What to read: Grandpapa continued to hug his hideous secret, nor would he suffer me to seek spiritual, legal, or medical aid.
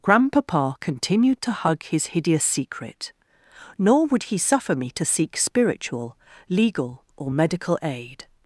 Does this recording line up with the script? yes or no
yes